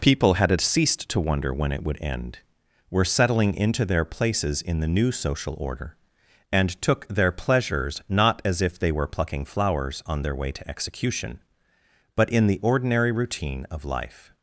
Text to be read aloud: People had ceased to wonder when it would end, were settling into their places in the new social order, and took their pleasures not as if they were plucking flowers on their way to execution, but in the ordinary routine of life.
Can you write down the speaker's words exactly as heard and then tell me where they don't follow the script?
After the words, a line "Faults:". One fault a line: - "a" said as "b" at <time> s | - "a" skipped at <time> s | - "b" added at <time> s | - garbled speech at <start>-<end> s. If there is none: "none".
People had ceased to wonder when it would end, were settling into their places in the new social order, and took their pleasures not as if they were plucking flowers on their way to execution, but in the ordinary routine of life.
Faults:
none